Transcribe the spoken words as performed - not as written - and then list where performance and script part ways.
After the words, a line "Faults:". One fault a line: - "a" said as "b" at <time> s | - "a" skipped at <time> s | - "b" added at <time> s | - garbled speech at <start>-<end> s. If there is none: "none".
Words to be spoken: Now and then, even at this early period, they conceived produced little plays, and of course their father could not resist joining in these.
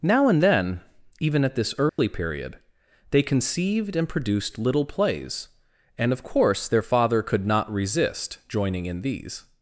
Now and then, even at this early period, they conceived and produced little plays, and of course their father could not resist joining in these.
Faults:
- "and" added at 4.0 s